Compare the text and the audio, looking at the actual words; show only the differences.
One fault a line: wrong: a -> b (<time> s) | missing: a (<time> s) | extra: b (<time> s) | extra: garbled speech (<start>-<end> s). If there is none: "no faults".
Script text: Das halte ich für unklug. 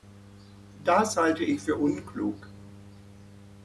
no faults